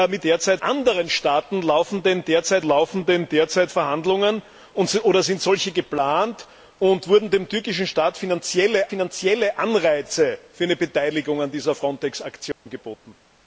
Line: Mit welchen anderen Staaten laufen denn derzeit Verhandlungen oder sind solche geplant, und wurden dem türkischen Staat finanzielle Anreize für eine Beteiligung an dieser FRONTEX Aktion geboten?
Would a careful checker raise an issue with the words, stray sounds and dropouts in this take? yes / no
yes